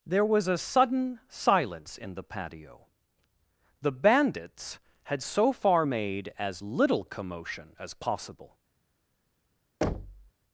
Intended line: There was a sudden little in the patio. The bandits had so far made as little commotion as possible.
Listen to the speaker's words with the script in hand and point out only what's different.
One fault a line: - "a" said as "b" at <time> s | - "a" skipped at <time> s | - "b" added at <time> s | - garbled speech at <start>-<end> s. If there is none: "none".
- "little" said as "silence" at 1.3 s